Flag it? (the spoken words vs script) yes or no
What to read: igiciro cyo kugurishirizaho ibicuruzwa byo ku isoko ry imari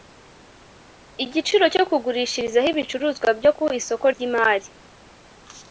no